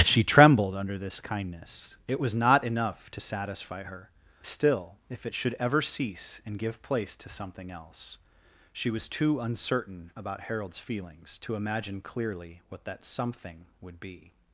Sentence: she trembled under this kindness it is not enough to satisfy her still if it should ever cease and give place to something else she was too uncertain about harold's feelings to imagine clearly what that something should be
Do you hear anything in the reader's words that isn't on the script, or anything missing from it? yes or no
yes